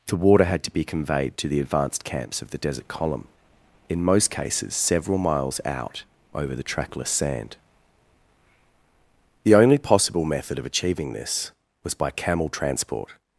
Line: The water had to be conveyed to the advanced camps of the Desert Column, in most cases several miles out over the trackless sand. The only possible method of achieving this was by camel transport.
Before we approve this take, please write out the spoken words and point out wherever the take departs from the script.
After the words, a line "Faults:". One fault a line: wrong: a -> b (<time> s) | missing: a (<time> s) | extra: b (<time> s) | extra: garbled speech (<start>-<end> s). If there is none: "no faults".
The water had to be conveyed to the advanced camps of the Desert Column, in most cases several miles out over the trackless sand. The only possible method of achieving this was by camel transport.
Faults:
no faults